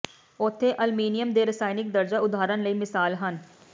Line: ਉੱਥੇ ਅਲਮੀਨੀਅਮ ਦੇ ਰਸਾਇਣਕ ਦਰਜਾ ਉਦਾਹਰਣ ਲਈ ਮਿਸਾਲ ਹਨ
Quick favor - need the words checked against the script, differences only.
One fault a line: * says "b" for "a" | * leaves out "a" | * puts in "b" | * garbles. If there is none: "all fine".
all fine